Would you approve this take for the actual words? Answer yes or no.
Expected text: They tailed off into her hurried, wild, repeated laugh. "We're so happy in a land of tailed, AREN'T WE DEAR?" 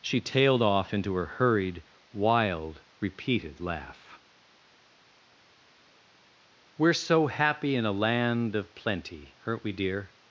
no